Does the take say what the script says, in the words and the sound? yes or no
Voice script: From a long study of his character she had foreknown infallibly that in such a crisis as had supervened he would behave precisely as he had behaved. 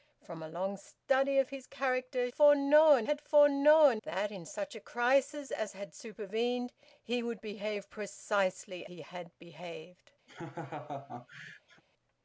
no